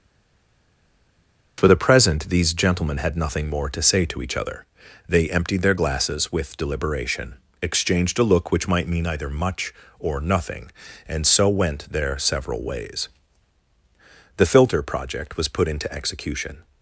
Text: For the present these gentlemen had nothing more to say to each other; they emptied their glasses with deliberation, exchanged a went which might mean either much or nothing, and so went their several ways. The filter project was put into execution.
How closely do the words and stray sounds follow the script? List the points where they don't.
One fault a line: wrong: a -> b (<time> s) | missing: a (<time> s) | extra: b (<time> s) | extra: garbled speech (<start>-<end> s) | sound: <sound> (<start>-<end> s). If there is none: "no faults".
wrong: went -> look (8.2 s)